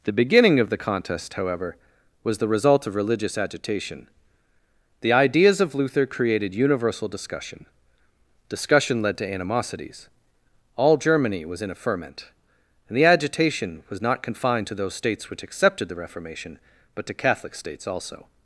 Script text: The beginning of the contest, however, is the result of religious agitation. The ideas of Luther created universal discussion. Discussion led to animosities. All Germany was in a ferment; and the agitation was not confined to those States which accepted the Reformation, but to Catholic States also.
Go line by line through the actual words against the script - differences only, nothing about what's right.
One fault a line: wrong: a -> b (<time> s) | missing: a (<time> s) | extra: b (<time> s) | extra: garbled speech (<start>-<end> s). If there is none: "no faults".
wrong: is -> was (2.2 s)